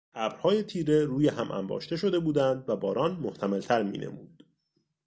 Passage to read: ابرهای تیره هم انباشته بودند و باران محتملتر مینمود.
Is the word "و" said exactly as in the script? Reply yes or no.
yes